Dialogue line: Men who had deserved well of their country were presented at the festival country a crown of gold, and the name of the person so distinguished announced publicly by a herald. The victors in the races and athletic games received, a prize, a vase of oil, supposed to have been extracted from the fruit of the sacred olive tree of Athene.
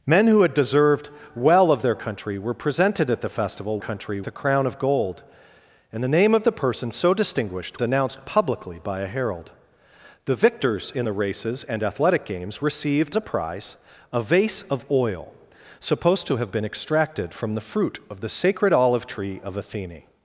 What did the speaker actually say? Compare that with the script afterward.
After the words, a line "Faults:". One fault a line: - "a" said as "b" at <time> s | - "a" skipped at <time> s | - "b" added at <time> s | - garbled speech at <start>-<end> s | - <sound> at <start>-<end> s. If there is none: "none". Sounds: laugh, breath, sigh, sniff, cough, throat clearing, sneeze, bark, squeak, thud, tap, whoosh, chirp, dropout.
Men who had deserved well of their country were presented at the festival country a crown of gold, and the name of the person so distinguished announced publicly by a herald. The victors in the races and athletic games received, a prize, a vase of oil, supposed to have been extracted from the fruit of the sacred olive tree of Athene.
Faults:
none